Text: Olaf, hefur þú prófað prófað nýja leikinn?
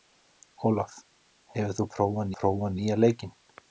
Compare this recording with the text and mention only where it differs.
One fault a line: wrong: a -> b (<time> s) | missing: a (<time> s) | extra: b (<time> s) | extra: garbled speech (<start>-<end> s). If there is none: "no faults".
no faults